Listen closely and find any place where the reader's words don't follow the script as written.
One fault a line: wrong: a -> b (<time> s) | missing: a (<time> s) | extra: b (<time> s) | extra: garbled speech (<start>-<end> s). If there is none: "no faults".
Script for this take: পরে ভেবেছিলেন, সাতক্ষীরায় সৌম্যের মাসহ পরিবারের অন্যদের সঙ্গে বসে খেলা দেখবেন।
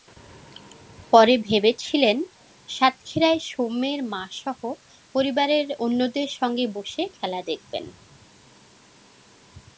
no faults